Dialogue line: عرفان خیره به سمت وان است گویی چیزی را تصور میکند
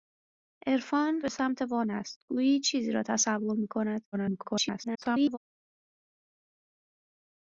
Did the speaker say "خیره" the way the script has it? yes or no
no